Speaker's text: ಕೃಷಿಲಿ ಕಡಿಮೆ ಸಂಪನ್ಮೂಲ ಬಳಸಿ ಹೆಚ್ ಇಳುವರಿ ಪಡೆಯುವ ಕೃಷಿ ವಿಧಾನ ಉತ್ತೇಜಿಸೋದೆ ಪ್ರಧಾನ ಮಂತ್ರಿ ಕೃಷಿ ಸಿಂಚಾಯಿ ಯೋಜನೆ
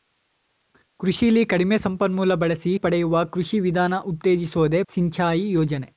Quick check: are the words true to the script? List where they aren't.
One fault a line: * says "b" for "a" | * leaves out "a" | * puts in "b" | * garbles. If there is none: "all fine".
* leaves out "ಹೆಚ್ ಇಳುವರಿ"
* leaves out "ಪ್ರಧಾನ ಮಂತ್ರಿ ಕೃಷಿ"